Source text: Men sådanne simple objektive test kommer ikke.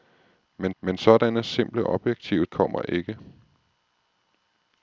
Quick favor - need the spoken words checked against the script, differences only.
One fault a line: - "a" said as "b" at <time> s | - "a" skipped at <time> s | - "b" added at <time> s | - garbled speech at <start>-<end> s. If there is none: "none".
- "men" added at 0.8 s
- "test" skipped at 2.5 s